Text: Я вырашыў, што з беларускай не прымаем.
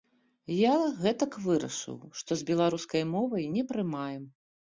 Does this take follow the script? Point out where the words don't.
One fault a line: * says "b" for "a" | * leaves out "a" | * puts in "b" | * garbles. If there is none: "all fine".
* puts in "гэтак"
* puts in "мовай"